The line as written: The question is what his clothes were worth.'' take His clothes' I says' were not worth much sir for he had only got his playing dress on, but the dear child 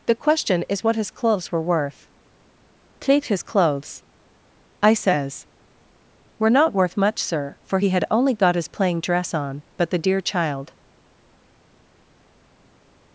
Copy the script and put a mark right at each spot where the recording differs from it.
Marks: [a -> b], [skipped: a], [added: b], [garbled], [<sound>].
The question is what his clothes were worth.'' take His clothes' I says' were not worth much sir for he had only got his playing dress on, but the dear child